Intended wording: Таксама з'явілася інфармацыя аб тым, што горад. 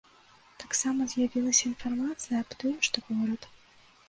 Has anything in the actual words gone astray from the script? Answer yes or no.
no